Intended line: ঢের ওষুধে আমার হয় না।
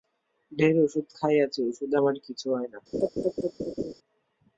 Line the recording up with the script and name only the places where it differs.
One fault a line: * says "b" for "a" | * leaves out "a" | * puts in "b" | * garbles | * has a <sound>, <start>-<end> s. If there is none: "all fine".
* puts in "ওষুধ খাইয়াছি"
* puts in "কিছু"
* has a laugh, 2.9-3.9 s